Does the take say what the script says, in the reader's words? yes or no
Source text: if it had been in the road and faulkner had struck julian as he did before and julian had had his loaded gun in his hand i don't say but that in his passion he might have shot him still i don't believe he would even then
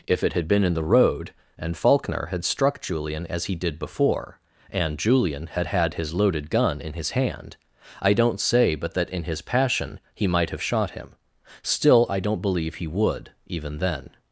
yes